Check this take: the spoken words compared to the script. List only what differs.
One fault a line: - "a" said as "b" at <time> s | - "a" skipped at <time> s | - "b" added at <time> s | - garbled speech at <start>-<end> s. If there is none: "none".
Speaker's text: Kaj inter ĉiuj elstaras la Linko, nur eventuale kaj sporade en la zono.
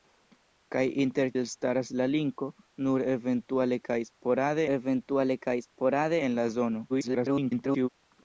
- "ĉiuj" skipped at 1.3 s
- "eventuale kaj sporade" added at 4.7 s
- garbled speech at 6.9-7.9 s